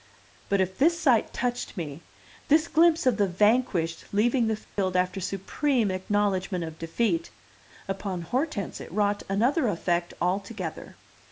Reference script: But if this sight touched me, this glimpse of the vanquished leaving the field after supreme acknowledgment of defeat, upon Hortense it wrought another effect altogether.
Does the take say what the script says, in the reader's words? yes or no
yes